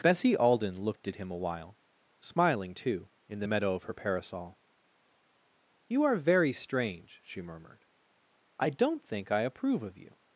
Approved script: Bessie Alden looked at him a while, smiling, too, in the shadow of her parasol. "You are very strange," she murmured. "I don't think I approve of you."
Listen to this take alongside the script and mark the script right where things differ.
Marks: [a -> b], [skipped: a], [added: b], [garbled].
Bessie Alden looked at him a while, smiling, too, in the [shadow -> meadow] of her parasol. "You are very strange," she murmured. "I don't think I approve of you."